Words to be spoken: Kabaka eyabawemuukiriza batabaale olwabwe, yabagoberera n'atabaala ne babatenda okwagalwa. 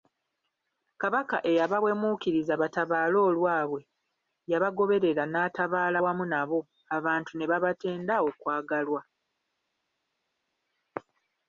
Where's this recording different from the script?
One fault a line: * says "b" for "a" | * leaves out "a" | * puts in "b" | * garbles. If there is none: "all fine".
* puts in "wamu nabo abantu"